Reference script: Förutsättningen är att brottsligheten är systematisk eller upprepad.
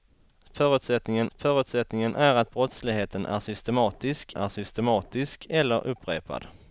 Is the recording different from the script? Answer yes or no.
yes